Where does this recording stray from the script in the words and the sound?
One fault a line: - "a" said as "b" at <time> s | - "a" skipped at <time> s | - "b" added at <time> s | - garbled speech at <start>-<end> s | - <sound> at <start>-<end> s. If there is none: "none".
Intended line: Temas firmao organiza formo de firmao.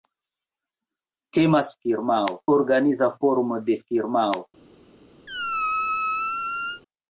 - squeak at 5.3-6.8 s